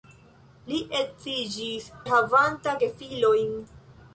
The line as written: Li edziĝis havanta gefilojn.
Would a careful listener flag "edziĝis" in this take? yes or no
no